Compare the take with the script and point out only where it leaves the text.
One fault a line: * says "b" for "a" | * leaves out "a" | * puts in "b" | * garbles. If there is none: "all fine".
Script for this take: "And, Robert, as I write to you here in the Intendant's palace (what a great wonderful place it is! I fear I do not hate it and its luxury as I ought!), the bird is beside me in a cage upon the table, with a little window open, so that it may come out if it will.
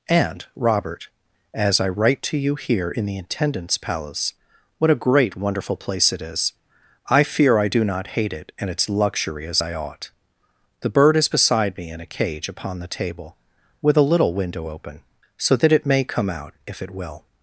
all fine